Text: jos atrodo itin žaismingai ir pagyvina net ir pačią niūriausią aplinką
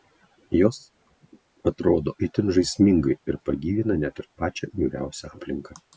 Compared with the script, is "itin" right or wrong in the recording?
right